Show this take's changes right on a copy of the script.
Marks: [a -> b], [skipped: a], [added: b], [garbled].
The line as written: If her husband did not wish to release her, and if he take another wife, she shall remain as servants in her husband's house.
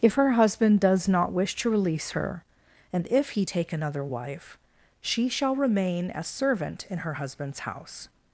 If her husband [did -> does] not wish to release her, and if he take another wife, she shall remain as [servants -> servant] in her husband's house.